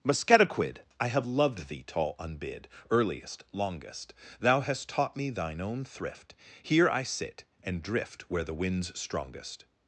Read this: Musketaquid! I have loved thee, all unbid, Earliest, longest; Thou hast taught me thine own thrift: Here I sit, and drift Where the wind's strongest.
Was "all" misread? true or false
true